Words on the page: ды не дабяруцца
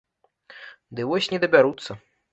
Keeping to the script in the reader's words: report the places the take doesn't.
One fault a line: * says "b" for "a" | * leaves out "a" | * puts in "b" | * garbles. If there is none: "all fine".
* puts in "вось"